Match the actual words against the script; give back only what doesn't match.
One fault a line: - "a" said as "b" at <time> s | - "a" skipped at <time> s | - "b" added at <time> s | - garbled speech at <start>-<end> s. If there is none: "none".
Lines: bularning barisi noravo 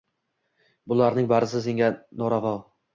- "senga" added at 1.7 s